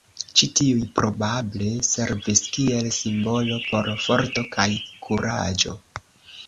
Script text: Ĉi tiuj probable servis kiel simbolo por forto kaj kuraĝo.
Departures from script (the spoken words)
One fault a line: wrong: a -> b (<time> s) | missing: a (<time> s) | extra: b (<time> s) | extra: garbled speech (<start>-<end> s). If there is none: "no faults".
no faults